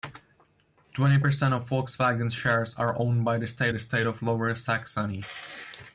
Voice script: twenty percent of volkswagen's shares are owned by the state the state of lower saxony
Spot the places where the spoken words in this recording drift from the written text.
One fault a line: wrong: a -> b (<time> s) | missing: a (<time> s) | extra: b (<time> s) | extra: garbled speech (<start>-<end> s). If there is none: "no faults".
no faults